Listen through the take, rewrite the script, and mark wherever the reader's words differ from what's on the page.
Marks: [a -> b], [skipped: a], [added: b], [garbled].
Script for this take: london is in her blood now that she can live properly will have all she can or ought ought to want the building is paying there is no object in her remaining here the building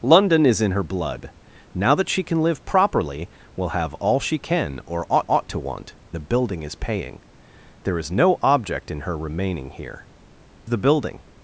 london is in her blood now that she can live properly will have all she can or ought ought to want the building is paying there is no object in her remaining here the building